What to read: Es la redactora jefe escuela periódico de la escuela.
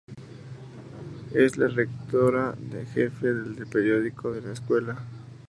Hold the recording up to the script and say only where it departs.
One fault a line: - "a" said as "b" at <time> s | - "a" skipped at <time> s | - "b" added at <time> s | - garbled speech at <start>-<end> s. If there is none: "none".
- "escuela" said as "del" at 3.3 s